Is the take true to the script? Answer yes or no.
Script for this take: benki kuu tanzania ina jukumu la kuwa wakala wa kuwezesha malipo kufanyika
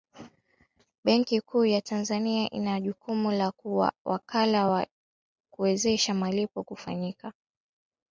no